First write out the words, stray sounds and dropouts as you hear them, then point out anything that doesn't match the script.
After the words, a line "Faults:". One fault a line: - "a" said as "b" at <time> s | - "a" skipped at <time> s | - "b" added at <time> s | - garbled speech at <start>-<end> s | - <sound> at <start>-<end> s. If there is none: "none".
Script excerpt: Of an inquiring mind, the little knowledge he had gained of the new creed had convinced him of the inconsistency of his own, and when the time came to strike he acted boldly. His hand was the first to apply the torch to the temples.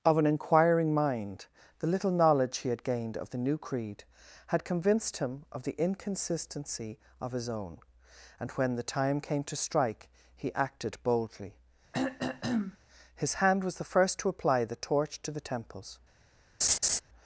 Of an inquiring mind, the little knowledge he had gained of the new creed had convinced him of the inconsistency of his own, and when the time came to strike he acted boldly. His hand was the first to apply the torch to the temples.
Faults:
- throat clearing at 11.9-12.8 s
- laugh at 16.6-17.0 s